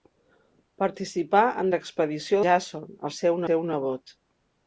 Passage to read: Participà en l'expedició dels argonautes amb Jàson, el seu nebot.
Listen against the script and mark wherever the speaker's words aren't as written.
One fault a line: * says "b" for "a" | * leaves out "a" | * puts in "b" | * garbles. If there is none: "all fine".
* leaves out "dels argonautes amb"
* puts in "seu"